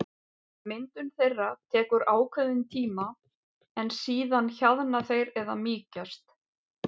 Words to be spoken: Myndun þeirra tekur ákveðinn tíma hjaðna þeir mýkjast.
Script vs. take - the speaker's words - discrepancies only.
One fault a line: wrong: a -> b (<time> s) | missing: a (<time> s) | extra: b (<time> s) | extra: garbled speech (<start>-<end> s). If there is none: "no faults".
extra: en síðan (3.8 s)
extra: eða (5.4 s)